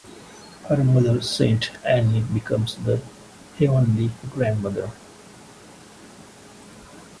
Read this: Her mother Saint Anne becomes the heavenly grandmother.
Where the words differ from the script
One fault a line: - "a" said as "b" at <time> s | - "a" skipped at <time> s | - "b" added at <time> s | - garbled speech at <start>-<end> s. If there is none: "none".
none